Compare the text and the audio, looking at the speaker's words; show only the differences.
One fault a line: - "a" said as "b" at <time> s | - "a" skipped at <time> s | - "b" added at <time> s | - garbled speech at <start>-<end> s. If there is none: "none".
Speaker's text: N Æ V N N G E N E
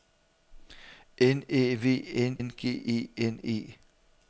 none